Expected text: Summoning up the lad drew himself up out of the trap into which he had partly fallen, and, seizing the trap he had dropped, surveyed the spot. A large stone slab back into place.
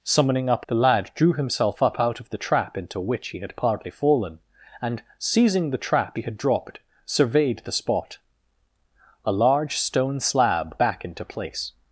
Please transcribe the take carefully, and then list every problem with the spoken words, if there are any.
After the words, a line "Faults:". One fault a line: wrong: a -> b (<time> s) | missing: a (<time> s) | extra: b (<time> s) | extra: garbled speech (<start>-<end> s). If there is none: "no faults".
Summoning up the lad drew himself up out of the trap into which he had partly fallen, and, seizing the trap he had dropped, surveyed the spot. A large stone slab back into place.
Faults:
no faults